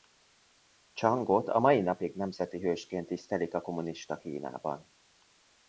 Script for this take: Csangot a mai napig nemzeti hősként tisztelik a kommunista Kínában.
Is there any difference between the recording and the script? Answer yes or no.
no